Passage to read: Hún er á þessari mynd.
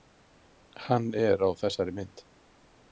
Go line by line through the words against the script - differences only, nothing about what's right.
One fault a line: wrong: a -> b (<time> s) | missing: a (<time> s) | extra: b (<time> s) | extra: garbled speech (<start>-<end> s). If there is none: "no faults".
wrong: Hún -> Hann (0.9 s)